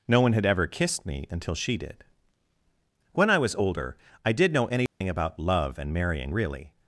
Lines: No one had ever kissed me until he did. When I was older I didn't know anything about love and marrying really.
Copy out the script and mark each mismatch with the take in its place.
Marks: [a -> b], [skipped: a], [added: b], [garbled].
No one had ever kissed me until [he -> she] did. When I was older I [didn't -> did] know anything about love and marrying really.